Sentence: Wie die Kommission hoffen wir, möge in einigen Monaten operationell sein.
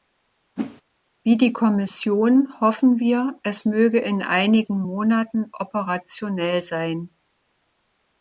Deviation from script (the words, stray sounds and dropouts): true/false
true